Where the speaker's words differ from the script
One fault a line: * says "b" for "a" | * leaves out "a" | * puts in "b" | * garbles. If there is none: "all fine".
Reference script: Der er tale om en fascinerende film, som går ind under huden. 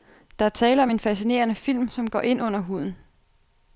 all fine